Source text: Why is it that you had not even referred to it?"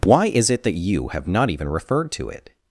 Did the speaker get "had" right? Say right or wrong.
wrong